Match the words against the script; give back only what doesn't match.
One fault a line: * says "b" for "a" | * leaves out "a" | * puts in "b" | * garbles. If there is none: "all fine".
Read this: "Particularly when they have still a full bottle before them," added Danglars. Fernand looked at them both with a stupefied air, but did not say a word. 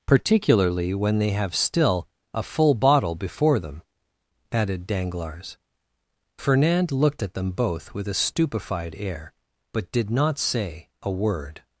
all fine